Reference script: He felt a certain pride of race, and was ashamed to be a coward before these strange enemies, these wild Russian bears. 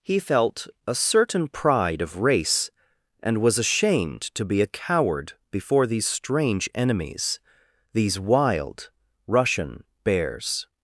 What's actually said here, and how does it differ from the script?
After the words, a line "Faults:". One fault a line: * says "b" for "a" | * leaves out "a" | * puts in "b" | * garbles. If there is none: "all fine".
He felt a certain pride of race, and was ashamed to be a coward before these strange enemies, these wild Russian bears.
Faults:
all fine